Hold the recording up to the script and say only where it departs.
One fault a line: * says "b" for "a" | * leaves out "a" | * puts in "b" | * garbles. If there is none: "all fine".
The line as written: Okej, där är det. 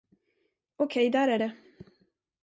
all fine